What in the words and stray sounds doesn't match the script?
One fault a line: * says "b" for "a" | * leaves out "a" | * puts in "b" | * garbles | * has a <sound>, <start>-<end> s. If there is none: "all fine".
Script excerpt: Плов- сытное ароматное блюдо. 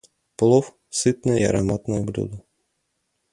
all fine